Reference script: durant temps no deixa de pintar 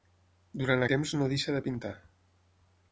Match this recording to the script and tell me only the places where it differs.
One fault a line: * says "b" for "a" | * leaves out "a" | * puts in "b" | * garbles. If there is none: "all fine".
all fine